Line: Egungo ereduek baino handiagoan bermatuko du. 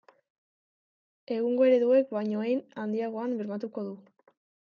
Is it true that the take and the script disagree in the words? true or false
true